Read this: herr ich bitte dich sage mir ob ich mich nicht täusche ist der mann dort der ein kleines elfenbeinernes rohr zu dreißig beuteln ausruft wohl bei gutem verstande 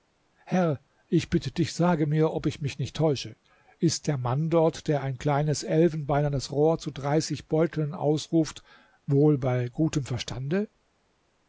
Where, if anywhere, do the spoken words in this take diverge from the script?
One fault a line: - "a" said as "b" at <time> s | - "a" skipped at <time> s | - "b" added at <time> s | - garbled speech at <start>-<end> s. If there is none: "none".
none